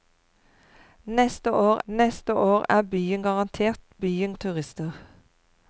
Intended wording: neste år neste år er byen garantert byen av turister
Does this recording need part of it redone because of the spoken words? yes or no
no